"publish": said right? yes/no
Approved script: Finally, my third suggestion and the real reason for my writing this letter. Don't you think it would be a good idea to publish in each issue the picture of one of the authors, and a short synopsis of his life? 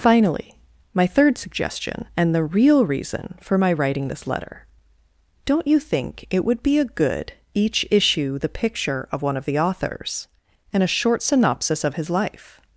no